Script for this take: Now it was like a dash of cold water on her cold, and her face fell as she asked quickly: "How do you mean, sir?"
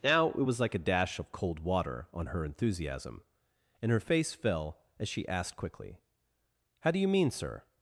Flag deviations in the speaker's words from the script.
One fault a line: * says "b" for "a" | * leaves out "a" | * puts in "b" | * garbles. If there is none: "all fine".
* says "enthusiasm" for "cold"